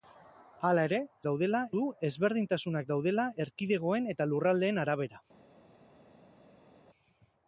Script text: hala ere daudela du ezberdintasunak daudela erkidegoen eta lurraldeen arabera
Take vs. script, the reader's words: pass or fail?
pass